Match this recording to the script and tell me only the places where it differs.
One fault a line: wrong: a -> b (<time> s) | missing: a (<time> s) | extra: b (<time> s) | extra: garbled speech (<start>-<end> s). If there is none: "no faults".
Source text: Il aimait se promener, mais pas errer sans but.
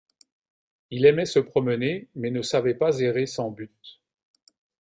extra: ne savait (2.3 s)